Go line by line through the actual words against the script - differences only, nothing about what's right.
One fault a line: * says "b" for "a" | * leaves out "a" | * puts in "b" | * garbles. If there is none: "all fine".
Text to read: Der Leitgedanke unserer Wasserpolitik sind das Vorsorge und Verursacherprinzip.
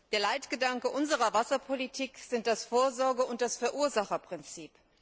* puts in "das"